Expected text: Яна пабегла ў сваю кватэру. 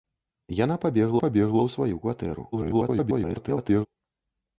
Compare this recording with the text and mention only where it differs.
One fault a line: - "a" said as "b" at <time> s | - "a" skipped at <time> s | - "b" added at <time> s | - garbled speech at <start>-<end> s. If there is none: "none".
- "пабегла" added at 1.2 s
- garbled speech at 2.5-3.9 s